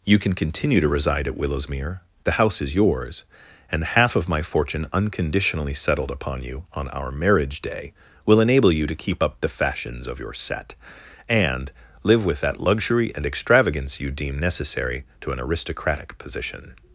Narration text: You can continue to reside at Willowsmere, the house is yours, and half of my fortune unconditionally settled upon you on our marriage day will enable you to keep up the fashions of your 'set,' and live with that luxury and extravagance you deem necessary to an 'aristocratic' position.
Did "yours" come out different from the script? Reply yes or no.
no